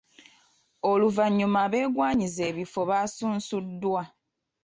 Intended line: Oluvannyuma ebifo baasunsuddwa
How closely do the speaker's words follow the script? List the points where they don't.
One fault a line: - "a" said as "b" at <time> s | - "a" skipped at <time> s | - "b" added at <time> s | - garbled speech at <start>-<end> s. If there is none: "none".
- "abeegwanyiza" added at 1.6 s